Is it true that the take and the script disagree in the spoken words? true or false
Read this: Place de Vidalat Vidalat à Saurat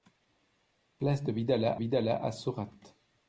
false